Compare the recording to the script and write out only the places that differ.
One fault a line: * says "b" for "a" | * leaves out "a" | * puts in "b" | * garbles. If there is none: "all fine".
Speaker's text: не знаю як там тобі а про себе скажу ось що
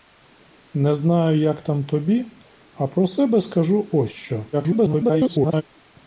* garbles